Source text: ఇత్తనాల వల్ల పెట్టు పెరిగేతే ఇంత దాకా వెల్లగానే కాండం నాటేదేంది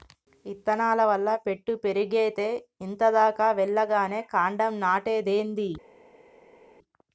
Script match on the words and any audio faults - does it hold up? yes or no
yes